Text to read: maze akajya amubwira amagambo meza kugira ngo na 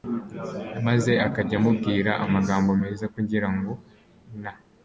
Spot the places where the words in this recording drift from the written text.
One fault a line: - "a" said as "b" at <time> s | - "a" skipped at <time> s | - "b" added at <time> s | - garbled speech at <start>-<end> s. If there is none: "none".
none